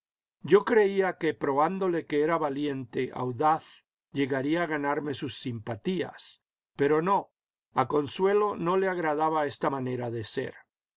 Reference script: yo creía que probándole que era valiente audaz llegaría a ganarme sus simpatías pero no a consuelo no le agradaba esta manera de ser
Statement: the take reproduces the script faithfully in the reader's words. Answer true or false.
true